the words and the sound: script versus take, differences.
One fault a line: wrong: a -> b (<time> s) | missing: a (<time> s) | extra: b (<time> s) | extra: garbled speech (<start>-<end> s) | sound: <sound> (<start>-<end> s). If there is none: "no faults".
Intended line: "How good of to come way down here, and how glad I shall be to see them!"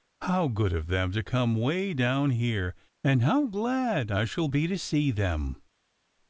extra: them (0.9 s)